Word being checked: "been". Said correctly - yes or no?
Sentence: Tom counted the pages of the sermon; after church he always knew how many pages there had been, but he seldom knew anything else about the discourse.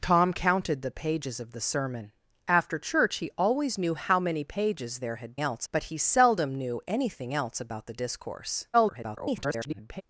no